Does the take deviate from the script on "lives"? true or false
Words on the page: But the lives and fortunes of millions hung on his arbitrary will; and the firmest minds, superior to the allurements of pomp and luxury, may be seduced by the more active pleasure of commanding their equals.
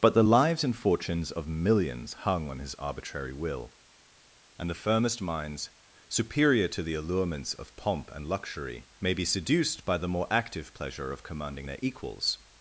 false